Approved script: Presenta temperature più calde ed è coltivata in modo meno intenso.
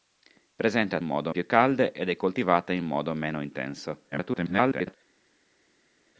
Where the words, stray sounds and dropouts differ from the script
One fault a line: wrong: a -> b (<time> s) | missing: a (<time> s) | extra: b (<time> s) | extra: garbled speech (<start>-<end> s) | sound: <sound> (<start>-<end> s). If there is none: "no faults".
wrong: temperature -> modo (1.0 s)
extra: garbled speech (4.1-4.9 s)